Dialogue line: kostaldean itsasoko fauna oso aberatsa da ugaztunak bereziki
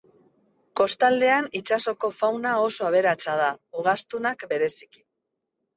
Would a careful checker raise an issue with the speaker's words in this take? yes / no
no